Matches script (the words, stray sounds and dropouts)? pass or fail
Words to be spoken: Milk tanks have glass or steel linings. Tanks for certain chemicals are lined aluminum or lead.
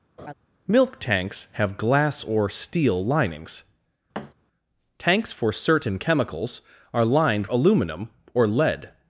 fail